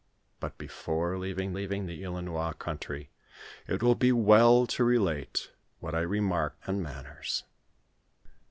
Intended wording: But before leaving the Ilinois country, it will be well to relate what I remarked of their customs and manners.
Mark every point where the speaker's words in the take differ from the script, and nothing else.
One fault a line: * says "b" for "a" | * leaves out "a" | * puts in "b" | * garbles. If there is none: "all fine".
* puts in "leaving"
* leaves out "of their customs"